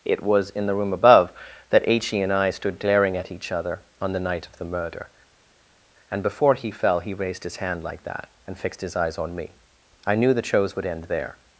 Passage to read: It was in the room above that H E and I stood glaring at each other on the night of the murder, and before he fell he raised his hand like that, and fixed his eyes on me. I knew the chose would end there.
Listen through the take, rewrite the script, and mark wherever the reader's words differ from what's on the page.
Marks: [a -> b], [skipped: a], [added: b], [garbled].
It was in the room above that H E and I stood glaring at each other on the night of the murder, and before he fell he raised his hand like that, and fixed his eyes on me. I knew the chose would end there.